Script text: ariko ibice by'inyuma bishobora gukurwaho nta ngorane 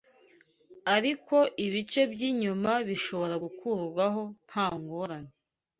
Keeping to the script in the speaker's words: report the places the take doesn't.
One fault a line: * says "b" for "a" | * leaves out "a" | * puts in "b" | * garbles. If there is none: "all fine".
all fine